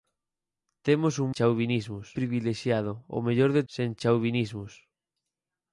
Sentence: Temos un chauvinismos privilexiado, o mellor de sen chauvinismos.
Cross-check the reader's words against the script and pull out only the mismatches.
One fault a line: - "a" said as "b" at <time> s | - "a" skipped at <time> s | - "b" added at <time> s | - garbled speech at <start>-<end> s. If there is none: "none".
none